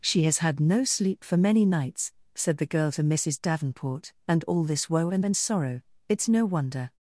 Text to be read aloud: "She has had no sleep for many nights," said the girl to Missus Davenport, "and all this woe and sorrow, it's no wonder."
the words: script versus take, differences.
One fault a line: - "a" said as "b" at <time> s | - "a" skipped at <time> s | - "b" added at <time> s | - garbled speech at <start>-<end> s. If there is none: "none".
- "and" added at 5.2 s